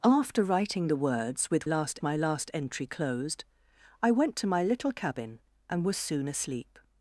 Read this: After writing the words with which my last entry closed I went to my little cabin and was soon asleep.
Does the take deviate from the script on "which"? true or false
true